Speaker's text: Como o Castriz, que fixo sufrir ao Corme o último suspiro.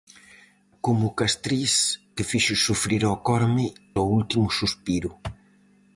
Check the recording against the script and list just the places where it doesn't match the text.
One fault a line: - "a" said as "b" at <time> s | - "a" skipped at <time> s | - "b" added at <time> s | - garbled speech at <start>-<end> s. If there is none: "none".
none